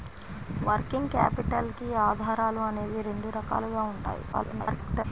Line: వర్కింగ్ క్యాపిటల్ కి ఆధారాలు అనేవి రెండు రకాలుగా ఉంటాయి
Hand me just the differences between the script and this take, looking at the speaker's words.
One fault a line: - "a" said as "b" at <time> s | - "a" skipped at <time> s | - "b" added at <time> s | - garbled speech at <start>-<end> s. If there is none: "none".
- garbled speech at 4.3-5.0 s